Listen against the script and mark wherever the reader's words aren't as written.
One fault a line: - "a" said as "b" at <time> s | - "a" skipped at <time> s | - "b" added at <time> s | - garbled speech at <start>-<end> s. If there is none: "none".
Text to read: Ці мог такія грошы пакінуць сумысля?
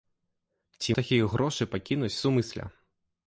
- "мог" skipped at 0.9 s